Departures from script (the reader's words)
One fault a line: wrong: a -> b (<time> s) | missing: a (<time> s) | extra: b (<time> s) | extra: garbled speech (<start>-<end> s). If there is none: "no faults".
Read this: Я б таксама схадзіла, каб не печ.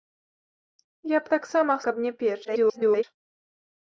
missing: схадзіла (1.8 s)
extra: garbled speech (2.4-3.0 s)